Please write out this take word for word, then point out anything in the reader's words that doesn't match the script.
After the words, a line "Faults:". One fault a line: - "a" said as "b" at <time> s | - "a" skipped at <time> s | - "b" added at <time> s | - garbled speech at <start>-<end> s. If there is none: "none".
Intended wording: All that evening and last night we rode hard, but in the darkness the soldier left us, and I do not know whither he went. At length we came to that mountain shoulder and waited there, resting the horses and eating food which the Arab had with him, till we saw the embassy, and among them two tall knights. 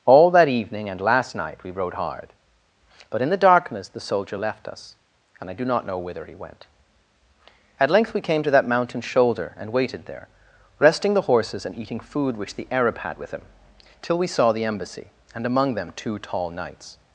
All that evening and last night we rode hard, but in the darkness the soldier left us, and I do not know whither he went. At length we came to that mountain shoulder and waited there, resting the horses and eating food which the Arab had with him, till we saw the embassy, and among them two tall knights.
Faults:
none